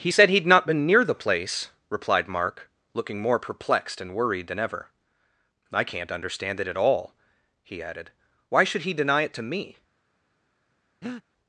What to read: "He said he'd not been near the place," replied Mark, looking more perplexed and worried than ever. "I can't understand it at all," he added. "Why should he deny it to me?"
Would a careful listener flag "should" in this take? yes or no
no